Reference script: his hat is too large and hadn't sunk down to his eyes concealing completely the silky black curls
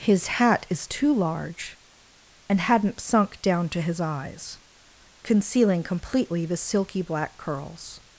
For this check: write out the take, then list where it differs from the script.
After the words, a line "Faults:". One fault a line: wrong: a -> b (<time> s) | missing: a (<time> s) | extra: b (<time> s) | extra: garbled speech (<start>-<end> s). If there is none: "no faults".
his hat is too large and hadn't sunk down to his eyes concealing completely the silky black curls
Faults:
no faults